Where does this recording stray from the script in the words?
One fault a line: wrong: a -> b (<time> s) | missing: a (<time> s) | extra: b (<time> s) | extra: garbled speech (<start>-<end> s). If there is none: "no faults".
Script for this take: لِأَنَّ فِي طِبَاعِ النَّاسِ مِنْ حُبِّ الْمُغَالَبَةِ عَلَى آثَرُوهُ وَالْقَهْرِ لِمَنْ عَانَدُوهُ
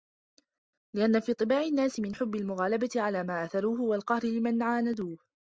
extra: مَا (3.2 s)